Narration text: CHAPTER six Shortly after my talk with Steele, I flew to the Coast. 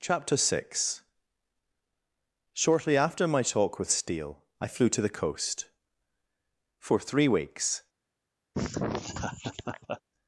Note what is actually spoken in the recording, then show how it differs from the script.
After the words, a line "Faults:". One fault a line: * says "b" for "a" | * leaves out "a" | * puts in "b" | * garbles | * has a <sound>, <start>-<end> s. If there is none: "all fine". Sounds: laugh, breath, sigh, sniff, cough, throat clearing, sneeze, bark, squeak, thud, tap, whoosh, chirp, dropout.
CHAPTER six Shortly after my talk with Steele, I flew to the Coast. For three weeks
Faults:
* puts in "For three weeks"
* has a laugh, 8.5-10.0 s